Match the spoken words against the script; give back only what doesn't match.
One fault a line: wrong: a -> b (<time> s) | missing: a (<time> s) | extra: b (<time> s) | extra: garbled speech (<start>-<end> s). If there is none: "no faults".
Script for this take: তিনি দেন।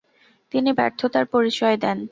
extra: ব্যর্থতার পরিচয় (0.7 s)